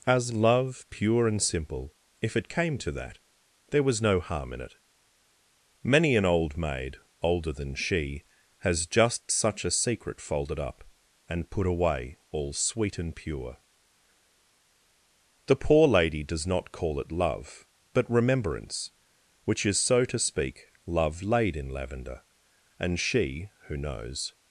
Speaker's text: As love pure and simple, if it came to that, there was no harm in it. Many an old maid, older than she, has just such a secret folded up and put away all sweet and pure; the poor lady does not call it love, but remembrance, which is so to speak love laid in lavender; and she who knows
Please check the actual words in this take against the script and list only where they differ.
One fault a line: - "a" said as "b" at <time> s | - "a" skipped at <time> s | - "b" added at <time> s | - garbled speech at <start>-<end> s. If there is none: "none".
none